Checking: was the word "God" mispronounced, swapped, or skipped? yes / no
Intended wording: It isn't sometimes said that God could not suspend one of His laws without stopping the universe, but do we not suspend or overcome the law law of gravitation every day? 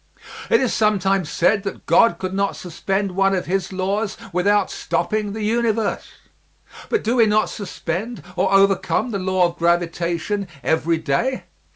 no